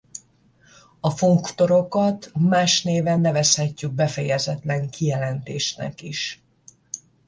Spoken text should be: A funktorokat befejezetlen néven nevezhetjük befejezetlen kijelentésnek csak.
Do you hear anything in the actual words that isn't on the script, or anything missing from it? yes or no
yes